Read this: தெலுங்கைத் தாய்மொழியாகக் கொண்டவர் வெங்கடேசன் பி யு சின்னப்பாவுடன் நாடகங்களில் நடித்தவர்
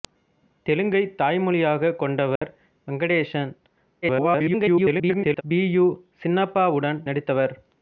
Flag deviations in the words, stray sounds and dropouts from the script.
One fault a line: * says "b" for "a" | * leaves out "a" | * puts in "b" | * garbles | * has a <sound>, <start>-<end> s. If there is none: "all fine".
* has a dropout, 2.4-2.4 s
* garbles
* leaves out "நாடகங்களில்"